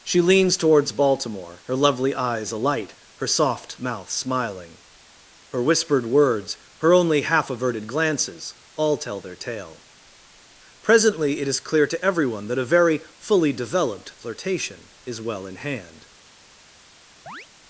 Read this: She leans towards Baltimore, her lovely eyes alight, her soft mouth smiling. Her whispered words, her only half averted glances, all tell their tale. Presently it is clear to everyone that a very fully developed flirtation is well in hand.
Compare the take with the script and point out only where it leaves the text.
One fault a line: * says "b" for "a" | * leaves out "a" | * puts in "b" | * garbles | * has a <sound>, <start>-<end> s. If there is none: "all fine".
* has a chirp, 17.3-17.5 s